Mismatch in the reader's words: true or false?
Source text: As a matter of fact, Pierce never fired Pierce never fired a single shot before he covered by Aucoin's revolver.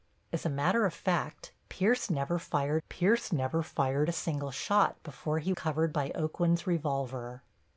false